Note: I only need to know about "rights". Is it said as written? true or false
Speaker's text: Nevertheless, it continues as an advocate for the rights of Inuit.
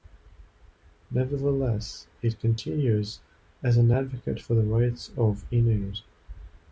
true